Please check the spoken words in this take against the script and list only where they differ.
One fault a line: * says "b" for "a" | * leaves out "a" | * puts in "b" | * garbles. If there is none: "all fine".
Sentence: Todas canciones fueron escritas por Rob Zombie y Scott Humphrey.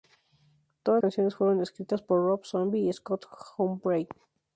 all fine